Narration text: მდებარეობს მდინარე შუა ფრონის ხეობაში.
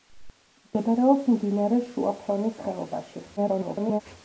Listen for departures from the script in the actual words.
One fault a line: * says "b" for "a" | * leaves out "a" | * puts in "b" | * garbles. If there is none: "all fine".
* garbles